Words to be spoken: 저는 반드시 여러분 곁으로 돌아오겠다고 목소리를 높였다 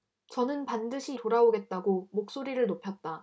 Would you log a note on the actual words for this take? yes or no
yes